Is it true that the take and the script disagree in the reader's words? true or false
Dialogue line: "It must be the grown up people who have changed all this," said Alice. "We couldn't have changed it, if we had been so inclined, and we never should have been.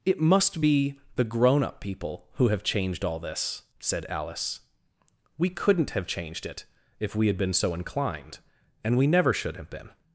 false